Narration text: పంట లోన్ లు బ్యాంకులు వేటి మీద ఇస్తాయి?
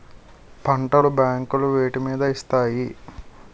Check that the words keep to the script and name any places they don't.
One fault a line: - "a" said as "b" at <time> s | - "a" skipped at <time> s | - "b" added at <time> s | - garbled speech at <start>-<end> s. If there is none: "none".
- "లోన్" skipped at 0.9 s